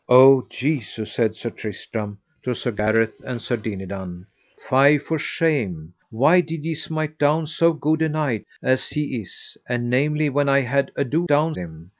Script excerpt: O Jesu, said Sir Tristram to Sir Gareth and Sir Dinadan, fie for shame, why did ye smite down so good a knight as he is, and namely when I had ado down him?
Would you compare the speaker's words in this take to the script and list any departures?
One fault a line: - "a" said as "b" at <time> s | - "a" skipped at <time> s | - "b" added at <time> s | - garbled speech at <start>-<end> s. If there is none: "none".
none